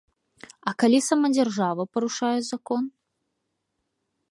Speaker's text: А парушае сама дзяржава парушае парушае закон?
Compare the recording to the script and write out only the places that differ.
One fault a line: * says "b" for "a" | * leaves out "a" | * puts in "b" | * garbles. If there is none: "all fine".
* says "калі" for "парушае"
* leaves out "парушае"